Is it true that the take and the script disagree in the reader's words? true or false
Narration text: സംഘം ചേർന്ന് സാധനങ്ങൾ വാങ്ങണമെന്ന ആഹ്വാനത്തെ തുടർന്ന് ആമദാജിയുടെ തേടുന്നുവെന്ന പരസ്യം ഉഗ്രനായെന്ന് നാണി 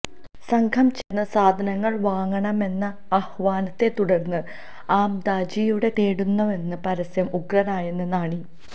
false